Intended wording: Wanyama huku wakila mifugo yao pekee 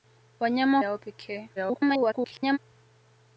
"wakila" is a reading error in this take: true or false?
true